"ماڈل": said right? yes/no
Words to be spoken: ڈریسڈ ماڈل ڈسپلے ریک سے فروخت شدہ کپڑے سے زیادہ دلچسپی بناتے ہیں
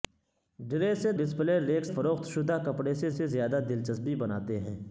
no